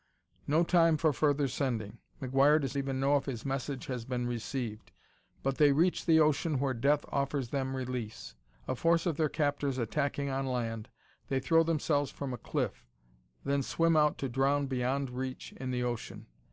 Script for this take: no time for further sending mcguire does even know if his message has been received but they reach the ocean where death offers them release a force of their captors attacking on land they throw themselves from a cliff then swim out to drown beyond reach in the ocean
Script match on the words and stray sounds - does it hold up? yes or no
yes